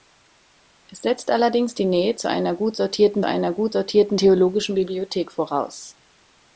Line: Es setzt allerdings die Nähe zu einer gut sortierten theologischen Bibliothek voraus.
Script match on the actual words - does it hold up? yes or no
no